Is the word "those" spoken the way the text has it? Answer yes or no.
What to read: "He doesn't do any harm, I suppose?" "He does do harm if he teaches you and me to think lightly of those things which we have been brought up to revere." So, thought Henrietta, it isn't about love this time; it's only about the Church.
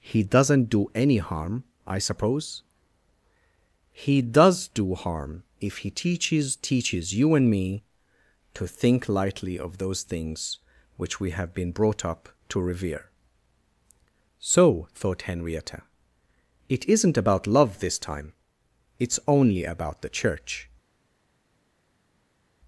yes